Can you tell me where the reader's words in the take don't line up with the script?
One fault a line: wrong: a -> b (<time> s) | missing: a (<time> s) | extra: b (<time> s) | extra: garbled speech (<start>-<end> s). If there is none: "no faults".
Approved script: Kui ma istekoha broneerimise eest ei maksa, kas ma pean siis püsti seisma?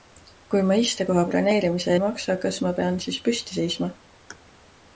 missing: eest (1.9 s)